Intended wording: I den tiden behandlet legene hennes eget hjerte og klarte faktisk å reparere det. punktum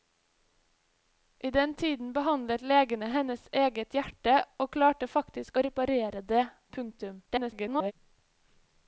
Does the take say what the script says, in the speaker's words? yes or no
no